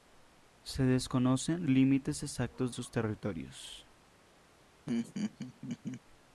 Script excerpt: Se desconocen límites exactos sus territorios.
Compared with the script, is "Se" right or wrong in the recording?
right